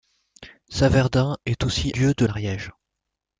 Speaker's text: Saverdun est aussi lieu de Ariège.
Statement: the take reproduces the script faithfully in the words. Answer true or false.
true